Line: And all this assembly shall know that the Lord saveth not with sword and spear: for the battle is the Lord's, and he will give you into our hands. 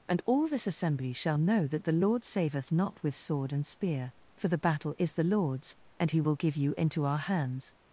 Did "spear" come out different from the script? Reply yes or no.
no